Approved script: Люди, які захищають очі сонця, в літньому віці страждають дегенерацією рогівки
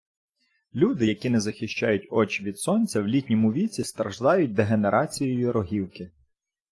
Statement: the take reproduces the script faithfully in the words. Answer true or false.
false